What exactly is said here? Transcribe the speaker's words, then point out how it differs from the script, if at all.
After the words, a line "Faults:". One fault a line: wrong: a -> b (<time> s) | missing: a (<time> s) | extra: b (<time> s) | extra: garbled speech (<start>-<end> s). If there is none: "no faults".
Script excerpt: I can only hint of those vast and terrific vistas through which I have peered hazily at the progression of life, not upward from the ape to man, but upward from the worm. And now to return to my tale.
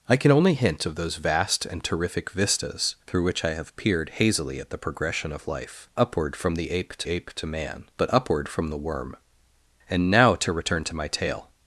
I can only hint of those vast and terrific vistas through which I have peered hazily at the progression of life, upward from the ape to ape to man, but upward from the worm. And now to return to my tale.
Faults:
missing: not (5.9 s)
extra: ape to (7.1 s)